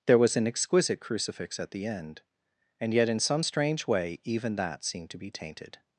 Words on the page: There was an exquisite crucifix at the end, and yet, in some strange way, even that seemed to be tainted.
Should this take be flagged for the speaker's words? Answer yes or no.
no